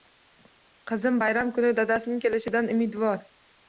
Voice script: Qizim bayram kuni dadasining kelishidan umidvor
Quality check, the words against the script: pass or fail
pass